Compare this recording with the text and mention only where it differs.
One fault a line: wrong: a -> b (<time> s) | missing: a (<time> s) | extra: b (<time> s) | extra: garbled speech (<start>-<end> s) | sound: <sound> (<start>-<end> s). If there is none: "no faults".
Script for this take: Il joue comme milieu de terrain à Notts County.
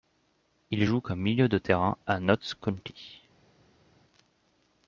no faults